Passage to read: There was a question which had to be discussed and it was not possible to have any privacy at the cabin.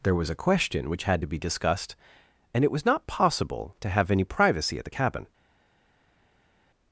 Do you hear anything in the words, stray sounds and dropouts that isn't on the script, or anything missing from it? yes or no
no